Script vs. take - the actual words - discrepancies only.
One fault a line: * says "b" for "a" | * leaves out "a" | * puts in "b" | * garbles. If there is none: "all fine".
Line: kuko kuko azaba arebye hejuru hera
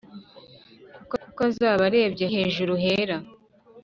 all fine